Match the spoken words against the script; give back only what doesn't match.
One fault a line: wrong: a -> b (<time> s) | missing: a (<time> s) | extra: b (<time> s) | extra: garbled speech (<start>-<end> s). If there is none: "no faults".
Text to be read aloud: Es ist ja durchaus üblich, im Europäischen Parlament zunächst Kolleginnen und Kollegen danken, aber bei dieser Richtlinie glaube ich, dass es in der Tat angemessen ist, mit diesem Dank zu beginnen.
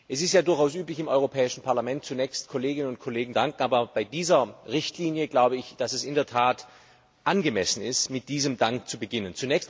no faults